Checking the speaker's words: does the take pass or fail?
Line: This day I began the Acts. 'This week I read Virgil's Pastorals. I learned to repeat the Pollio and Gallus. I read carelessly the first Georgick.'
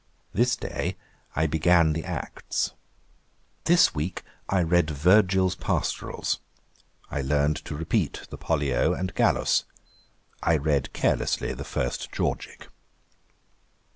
pass